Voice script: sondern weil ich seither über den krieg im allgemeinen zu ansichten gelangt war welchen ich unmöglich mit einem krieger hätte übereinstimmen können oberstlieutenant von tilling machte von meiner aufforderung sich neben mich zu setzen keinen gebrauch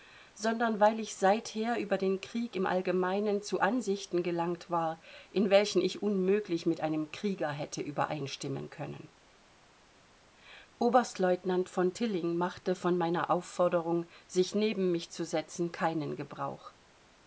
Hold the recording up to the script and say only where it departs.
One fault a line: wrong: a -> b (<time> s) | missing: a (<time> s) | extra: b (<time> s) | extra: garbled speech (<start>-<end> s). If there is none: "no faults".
extra: in (5.3 s)